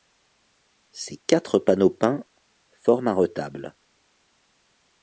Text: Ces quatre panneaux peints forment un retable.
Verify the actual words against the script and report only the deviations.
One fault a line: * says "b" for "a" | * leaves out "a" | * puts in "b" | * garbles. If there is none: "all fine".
all fine